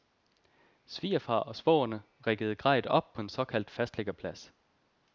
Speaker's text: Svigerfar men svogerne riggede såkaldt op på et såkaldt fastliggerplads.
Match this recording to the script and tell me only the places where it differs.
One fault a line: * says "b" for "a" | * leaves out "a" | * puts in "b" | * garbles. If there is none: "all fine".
* says "og" for "men"
* says "grejet" for "såkaldt"
* says "en" for "et"